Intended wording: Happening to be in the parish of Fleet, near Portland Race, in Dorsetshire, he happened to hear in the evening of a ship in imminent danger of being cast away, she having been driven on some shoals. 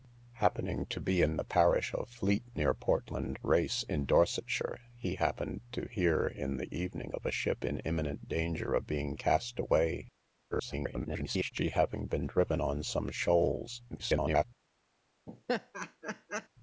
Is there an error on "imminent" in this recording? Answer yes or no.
no